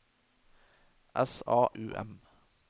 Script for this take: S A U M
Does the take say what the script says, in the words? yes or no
yes